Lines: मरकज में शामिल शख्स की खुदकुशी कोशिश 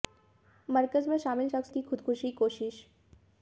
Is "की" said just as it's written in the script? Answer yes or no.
yes